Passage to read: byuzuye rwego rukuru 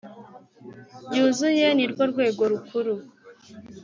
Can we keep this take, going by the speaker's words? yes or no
no